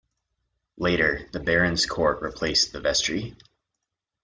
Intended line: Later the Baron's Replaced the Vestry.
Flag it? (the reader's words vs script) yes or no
yes